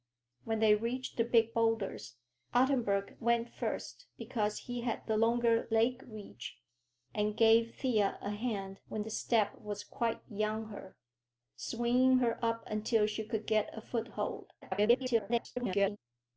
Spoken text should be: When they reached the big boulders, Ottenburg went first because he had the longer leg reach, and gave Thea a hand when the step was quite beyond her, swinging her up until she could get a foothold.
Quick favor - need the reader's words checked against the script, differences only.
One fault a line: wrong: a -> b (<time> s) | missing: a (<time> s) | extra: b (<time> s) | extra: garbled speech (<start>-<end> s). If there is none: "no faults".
extra: garbled speech (14.6-16.0 s)